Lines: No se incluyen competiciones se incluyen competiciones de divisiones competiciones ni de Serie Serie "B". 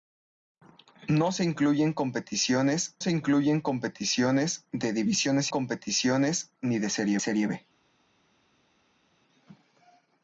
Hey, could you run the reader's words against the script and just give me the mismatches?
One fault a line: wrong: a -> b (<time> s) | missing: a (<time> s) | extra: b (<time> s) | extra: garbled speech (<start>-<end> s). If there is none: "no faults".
no faults